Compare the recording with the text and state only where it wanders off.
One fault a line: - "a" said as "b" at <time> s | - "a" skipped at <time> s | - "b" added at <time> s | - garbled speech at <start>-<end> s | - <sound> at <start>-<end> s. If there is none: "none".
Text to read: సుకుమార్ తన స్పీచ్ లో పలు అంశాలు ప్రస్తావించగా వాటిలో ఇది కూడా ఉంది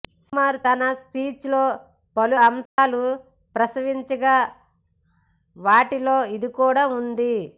- dropout at 2.7-2.8 s